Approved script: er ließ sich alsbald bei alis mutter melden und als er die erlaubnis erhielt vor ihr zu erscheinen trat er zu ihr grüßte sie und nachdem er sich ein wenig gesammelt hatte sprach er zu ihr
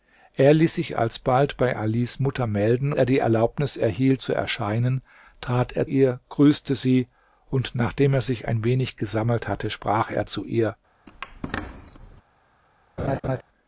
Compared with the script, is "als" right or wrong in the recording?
wrong